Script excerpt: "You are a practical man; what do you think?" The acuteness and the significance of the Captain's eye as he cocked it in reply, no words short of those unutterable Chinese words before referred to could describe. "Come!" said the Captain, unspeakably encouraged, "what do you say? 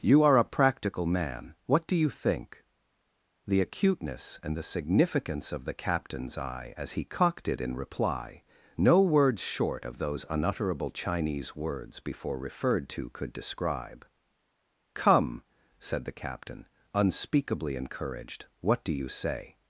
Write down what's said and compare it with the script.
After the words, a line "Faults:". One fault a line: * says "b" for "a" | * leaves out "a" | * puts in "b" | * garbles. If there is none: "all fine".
"You are a practical man; what do you think?" The acuteness and the significance of the Captain's eye as he cocked it in reply, no words short of those unutterable Chinese words before referred to could describe. "Come!" said the Captain, unspeakably encouraged, "what do you say?
Faults:
all fine